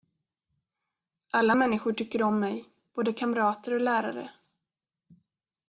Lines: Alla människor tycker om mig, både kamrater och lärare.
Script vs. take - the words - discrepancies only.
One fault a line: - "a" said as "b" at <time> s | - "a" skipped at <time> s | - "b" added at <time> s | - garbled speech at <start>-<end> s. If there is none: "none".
none